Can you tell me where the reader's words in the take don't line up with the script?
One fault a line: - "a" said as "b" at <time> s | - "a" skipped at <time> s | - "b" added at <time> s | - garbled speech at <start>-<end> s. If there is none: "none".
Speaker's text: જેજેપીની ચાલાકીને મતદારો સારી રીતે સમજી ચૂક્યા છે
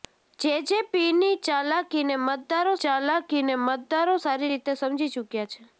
- "ચાલાકીને મતદારો" added at 2.8 s